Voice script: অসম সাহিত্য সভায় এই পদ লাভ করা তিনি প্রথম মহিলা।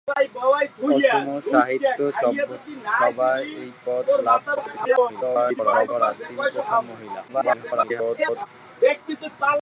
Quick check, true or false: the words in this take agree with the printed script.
false